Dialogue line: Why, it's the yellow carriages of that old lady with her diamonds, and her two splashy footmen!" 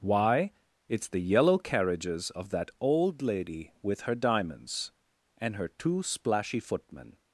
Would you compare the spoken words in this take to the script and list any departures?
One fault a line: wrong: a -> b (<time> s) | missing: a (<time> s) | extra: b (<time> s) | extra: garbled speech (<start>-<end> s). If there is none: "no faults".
no faults